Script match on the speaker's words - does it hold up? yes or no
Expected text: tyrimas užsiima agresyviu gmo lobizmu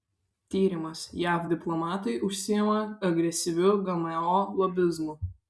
no